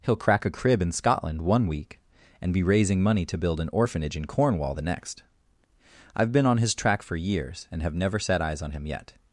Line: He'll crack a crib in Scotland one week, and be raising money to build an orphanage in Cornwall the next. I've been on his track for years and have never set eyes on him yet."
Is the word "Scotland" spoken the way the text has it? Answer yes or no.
yes